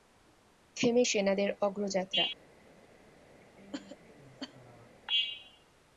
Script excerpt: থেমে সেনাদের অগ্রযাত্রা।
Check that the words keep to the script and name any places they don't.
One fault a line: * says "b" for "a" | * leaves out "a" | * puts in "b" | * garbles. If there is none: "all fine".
all fine